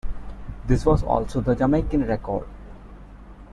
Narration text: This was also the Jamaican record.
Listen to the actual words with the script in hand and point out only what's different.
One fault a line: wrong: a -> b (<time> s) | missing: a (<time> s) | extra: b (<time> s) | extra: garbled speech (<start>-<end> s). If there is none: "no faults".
no faults